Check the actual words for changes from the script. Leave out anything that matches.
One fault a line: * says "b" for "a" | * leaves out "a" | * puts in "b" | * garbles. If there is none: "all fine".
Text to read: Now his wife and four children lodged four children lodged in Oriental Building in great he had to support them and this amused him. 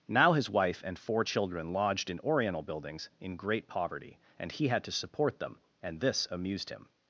* leaves out "four children lodged"
* says "Buildings" for "Building"
* puts in "poverty and"